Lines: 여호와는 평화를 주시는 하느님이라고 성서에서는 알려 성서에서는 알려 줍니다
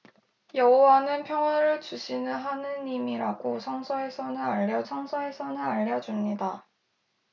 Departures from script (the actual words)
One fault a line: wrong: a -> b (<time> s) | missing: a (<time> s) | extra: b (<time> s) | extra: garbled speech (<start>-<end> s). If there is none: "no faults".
no faults